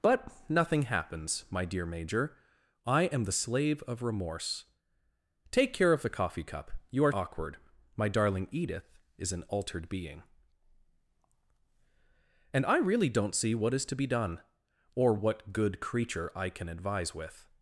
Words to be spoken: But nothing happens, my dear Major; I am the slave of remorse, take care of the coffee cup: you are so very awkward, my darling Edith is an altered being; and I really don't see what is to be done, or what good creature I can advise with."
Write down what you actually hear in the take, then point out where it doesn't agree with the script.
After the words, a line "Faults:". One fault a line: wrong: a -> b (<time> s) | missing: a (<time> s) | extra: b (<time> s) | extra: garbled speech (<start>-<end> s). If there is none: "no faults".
But nothing happens, my dear Major; I am the slave of remorse, take care of the coffee cup: you are awkward, my darling Edith is an altered being; and I really don't see what is to be done, or what good creature I can advise with."
Faults:
missing: so very (7.1 s)